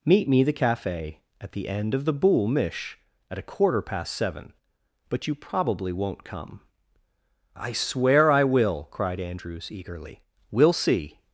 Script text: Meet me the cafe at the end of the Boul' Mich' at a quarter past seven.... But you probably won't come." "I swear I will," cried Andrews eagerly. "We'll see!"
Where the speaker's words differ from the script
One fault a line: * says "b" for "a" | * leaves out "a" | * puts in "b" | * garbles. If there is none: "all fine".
all fine